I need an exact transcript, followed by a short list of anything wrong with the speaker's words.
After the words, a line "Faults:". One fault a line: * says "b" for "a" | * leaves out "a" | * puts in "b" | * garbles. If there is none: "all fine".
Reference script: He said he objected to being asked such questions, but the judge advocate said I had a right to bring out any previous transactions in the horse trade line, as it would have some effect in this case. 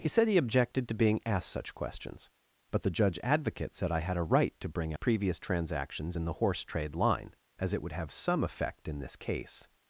He said he objected to being asked such questions, but the judge advocate said I had a right to bring previous transactions in the horse trade line, as it would have some effect in this case.
Faults:
* leaves out "out any"